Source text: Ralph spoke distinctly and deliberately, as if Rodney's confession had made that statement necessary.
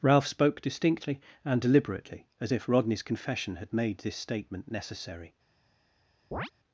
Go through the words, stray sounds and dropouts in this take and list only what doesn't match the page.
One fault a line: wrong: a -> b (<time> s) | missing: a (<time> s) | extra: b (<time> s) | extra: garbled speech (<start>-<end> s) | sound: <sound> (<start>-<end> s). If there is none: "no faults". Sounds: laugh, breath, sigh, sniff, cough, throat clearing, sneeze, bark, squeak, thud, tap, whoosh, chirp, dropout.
wrong: that -> this (4.0 s)
sound: chirp (6.3-6.5 s)